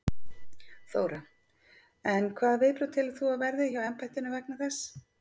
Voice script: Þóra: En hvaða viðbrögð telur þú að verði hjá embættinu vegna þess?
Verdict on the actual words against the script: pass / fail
pass